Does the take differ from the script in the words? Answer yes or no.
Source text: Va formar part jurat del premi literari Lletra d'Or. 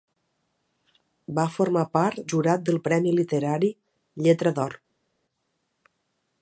no